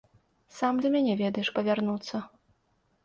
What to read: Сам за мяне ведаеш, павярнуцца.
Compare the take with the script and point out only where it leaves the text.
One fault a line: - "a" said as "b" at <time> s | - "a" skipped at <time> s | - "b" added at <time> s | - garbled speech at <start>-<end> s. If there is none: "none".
none